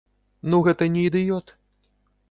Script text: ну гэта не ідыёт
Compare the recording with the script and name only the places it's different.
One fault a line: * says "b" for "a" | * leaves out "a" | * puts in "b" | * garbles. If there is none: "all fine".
all fine